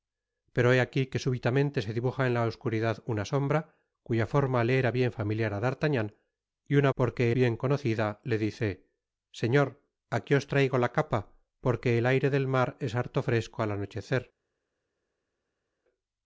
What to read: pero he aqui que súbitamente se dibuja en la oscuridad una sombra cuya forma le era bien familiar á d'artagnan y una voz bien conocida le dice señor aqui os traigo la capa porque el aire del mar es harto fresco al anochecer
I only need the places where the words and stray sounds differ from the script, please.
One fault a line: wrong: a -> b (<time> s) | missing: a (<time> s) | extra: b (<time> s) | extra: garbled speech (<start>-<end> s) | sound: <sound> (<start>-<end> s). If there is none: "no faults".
wrong: voz -> porque (7.0 s)